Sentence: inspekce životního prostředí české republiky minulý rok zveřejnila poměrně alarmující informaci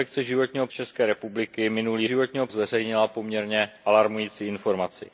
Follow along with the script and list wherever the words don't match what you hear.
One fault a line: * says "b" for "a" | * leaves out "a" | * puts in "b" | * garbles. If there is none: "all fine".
* leaves out "prostředí"
* says "životního" for "rok"